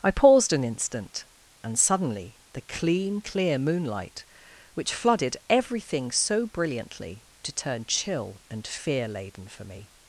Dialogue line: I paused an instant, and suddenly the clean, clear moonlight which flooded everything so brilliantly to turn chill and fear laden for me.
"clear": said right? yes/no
yes